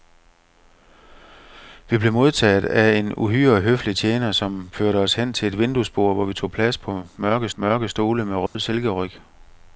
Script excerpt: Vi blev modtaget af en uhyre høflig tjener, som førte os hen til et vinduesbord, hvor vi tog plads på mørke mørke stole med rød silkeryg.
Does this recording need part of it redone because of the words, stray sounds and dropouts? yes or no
yes